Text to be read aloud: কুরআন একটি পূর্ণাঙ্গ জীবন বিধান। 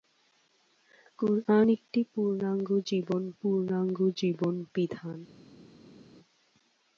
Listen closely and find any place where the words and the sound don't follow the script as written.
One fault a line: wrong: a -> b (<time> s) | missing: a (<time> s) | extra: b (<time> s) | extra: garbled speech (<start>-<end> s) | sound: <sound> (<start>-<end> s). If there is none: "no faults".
extra: পূর্ণাঙ্গ জীবন (3.4 s)